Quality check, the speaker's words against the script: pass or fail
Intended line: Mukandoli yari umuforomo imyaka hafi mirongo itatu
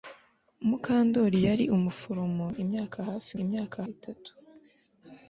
fail